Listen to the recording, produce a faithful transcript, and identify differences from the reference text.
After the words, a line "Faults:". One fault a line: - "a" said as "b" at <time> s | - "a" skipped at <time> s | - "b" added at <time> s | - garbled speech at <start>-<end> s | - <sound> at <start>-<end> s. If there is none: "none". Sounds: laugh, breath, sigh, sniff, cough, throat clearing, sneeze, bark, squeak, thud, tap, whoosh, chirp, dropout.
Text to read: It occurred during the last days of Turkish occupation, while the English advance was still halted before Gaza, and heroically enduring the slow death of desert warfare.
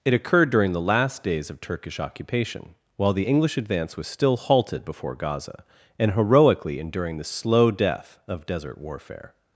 It occurred during the last days of Turkish occupation, while the English advance was still halted before Gaza, and heroically enduring the slow death of desert warfare.
Faults:
none